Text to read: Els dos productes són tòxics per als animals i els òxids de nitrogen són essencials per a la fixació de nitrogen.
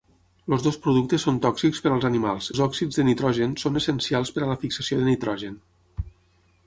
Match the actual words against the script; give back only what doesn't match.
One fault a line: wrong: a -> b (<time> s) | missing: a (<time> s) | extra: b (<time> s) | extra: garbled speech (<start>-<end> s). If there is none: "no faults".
missing: i (2.5 s)